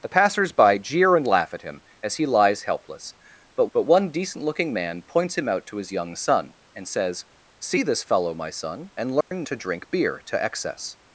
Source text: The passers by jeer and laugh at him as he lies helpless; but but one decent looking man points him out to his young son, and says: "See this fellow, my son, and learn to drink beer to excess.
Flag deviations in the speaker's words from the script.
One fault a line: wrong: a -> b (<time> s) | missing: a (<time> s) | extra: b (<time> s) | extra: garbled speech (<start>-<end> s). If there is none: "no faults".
no faults